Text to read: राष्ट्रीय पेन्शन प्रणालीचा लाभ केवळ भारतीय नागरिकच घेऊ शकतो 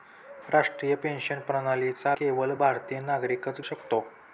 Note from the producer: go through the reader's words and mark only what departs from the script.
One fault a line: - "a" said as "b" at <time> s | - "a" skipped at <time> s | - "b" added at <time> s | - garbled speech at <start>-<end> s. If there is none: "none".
- "लाभ" skipped at 2.1 s
- "घेऊ" skipped at 3.6 s